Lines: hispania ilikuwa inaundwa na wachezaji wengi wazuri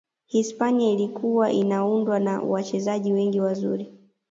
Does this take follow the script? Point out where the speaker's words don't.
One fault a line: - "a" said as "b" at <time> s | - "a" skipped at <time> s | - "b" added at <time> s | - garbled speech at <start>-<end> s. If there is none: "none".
none